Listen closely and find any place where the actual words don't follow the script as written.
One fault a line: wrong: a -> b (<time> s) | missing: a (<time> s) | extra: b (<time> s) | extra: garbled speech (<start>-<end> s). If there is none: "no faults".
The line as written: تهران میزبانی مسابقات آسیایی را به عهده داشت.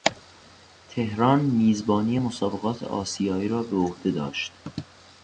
no faults